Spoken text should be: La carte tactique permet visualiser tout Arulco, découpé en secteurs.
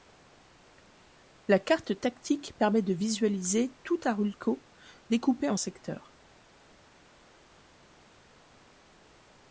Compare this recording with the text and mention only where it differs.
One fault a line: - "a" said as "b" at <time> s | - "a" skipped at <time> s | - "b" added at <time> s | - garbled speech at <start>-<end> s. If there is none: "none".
- "de" added at 2.8 s